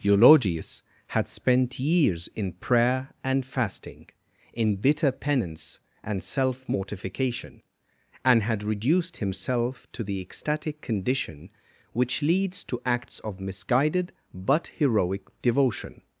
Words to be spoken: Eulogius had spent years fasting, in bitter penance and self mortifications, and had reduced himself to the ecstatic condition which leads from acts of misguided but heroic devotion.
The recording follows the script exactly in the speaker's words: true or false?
false